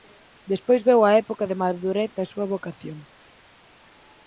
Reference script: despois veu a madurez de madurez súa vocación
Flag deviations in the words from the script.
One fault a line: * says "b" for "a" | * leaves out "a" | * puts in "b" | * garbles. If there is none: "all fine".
* says "época" for "madurez"
* puts in "da"